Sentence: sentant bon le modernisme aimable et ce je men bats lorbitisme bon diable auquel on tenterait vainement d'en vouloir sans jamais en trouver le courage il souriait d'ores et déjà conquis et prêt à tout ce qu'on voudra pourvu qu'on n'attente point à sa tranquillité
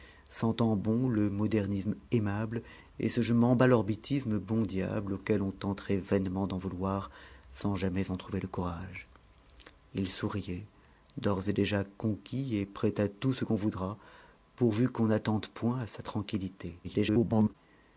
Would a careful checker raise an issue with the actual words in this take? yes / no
yes